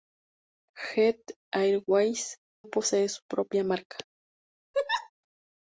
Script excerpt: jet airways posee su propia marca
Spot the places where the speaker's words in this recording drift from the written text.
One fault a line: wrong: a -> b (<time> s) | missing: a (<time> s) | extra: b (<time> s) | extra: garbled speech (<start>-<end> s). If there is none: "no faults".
no faults